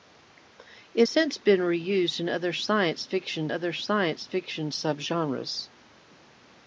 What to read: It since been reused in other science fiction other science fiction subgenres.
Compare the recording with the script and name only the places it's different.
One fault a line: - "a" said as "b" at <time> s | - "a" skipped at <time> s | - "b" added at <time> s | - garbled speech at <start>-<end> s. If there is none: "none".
none